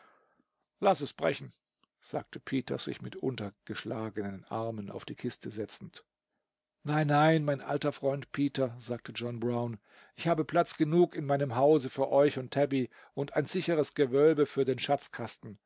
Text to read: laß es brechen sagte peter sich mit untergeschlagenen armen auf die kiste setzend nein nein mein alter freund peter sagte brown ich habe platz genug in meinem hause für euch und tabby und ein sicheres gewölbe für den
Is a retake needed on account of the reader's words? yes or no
yes